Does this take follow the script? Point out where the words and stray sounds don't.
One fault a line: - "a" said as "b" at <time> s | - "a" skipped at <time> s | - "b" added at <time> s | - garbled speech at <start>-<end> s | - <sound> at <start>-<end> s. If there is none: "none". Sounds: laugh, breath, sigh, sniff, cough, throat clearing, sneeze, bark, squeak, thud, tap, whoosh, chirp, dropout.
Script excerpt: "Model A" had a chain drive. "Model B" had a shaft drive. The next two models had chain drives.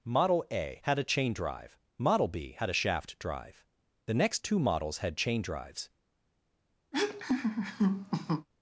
- laugh at 6.9-8.5 s